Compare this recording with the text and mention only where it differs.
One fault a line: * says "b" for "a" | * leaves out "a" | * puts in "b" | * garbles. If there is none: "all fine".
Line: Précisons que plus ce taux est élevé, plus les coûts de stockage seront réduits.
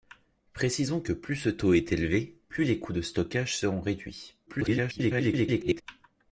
* garbles